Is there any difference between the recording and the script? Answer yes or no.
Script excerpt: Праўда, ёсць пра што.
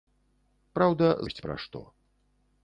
no